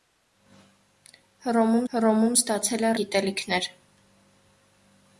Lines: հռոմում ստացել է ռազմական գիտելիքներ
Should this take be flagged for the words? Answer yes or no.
yes